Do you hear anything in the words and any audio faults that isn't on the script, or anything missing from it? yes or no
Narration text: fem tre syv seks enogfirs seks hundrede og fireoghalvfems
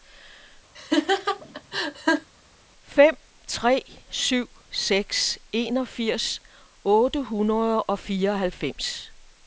yes